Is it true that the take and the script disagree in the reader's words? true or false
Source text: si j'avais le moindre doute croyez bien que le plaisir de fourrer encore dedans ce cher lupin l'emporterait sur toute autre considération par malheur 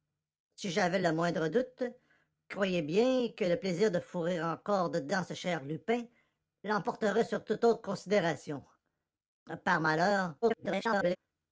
true